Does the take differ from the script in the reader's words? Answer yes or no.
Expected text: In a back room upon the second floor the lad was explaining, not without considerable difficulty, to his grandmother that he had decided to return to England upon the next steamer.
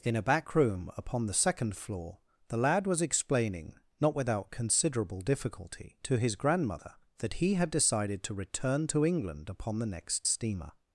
no